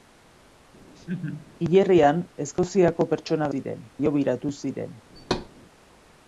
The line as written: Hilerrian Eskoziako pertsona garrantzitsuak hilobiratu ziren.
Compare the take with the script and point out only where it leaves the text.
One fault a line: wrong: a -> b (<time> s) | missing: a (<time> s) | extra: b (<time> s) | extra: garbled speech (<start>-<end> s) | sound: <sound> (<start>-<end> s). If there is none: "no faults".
sound: laugh (0.9-1.5 s)
wrong: garrantzitsuak -> ziren (3.5 s)
sound: thud (5.2-5.5 s)